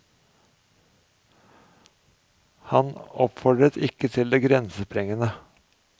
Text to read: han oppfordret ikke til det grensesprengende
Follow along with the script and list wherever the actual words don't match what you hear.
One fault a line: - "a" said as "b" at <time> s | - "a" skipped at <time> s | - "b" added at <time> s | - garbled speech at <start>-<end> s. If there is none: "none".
none